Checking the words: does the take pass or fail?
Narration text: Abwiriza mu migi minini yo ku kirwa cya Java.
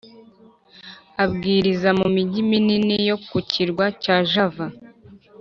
pass